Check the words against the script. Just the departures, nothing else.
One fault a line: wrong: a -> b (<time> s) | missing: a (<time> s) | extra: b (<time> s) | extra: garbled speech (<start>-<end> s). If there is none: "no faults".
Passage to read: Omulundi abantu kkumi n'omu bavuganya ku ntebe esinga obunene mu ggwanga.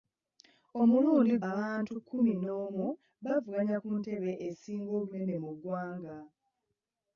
no faults